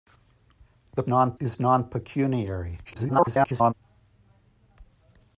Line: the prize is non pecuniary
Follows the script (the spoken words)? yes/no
no